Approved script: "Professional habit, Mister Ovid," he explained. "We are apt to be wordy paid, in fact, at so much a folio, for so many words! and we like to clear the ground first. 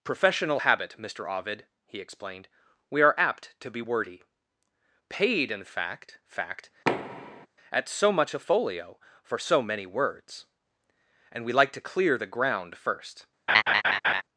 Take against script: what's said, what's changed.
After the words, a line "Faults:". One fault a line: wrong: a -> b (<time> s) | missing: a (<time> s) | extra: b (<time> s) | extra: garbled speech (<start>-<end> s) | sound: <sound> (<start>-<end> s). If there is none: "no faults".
"Professional habit, Mister Ovid," he explained. "We are apt to be wordy paid, in fact fact, at so much a folio, for so many words! and we like to clear the ground first.
Faults:
extra: fact (6.3 s)
sound: thud (6.9-7.5 s)
sound: laugh (13.5-14.2 s)